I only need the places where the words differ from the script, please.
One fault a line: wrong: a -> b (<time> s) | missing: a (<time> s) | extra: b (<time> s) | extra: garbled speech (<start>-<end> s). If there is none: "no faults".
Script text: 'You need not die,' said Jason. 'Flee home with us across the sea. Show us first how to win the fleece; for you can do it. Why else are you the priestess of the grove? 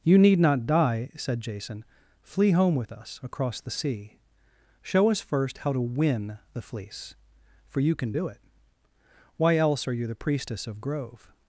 missing: the (10.8 s)